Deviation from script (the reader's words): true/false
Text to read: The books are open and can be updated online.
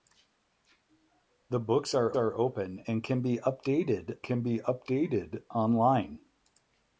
true